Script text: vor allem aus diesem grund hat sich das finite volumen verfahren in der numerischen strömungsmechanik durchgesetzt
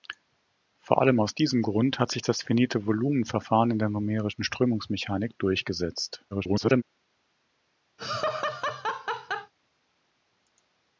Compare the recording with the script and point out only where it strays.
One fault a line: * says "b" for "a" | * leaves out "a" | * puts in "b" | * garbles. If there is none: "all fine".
* garbles